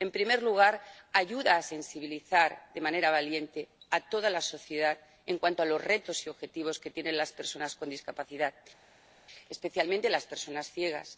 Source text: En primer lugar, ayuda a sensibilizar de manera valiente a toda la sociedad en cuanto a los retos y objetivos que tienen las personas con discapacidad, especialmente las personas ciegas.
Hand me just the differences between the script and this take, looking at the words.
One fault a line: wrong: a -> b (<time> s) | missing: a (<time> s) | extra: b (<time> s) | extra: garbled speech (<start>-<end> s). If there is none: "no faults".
no faults